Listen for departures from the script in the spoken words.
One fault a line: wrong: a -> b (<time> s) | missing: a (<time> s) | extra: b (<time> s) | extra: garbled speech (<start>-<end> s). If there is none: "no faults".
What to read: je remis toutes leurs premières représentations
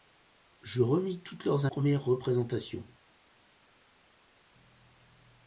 no faults